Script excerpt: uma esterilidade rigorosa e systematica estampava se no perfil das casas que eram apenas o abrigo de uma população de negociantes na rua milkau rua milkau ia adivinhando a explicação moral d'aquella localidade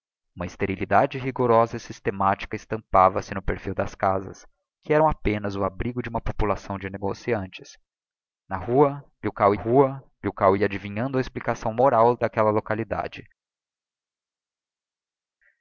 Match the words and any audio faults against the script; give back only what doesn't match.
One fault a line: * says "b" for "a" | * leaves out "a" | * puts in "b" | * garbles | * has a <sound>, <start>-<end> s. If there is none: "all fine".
all fine